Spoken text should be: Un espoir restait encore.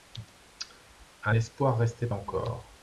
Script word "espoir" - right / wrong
right